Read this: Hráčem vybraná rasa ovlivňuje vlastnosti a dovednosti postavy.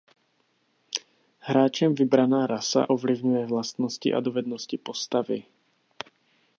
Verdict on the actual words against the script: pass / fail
pass